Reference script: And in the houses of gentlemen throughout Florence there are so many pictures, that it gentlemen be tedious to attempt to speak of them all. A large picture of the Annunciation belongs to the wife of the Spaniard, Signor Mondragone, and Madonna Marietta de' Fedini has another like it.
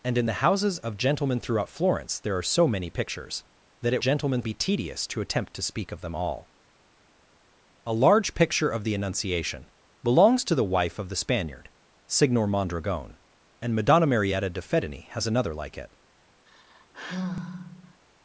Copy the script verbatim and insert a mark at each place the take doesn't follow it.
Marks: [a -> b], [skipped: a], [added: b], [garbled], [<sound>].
And in the houses of gentlemen throughout Florence there are so many pictures, that it gentlemen be tedious to attempt to speak of them all. A large picture of the Annunciation belongs to the wife of the Spaniard, Signor Mondragone, and Madonna Marietta de' Fedini has another like it. [sigh]